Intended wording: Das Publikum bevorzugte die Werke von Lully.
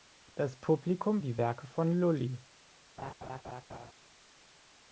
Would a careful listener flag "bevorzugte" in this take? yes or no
yes